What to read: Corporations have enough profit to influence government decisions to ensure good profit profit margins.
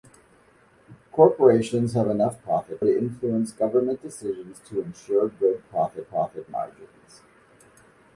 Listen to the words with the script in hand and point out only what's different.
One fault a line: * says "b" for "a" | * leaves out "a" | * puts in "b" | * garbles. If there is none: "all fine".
all fine